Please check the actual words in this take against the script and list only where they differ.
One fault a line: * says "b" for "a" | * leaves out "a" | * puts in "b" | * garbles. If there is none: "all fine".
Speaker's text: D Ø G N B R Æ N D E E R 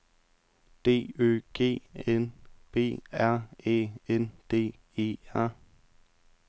* leaves out "E"